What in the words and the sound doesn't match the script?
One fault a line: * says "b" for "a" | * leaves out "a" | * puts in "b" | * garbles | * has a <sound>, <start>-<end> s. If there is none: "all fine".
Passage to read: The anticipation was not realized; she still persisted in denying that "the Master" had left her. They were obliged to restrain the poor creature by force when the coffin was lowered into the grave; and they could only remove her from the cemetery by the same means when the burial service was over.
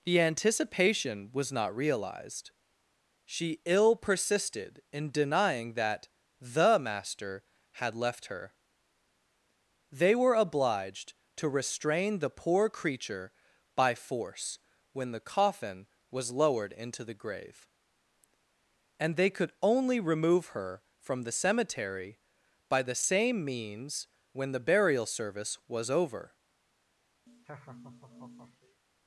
* says "ill" for "still"
* has a laugh, 27.3-28.8 s